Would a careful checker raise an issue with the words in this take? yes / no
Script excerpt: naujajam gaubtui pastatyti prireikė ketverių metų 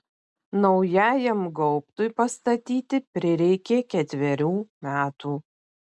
no